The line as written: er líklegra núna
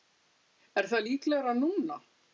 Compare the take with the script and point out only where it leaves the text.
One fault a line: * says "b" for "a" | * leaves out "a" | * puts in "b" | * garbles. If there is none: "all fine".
* puts in "það"